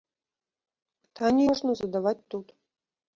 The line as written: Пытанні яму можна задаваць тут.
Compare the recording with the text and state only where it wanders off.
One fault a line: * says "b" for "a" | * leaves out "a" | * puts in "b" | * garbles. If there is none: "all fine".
* leaves out "яму"